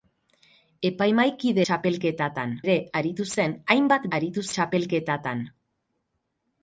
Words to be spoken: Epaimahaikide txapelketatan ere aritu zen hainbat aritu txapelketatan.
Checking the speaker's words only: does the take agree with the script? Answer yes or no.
yes